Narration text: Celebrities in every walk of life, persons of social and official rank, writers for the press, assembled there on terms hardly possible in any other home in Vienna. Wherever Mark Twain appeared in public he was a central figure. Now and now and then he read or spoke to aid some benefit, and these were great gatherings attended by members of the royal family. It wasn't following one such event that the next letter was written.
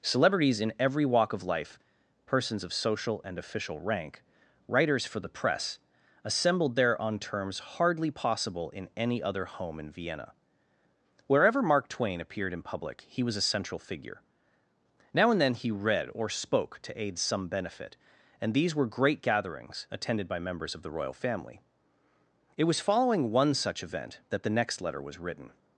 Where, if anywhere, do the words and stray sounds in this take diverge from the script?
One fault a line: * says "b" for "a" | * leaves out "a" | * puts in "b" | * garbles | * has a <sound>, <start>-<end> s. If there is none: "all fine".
* leaves out "now and"
* says "was" for "wasn't"